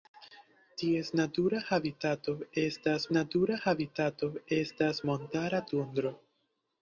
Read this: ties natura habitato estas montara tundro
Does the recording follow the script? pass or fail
fail